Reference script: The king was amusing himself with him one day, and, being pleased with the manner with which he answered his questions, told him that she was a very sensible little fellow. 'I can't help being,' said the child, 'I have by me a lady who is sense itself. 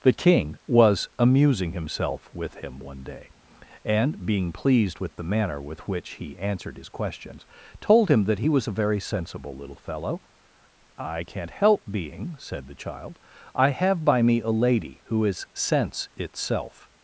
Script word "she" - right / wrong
wrong